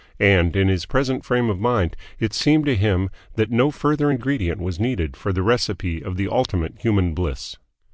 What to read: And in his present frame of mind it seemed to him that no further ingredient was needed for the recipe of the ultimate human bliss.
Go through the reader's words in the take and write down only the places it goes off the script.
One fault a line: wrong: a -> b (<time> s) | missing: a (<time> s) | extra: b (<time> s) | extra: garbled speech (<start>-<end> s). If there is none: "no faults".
no faults